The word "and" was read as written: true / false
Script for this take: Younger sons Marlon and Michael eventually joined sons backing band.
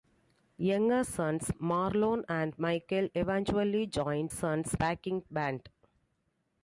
true